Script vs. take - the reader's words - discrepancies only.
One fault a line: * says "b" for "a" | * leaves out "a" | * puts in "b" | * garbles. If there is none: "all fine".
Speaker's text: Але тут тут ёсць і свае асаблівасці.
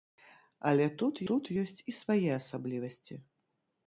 all fine